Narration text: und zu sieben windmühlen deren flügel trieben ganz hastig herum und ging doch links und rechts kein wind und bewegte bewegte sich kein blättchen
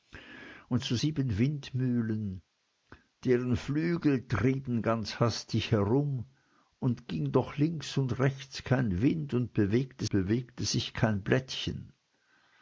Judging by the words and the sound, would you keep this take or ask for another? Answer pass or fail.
pass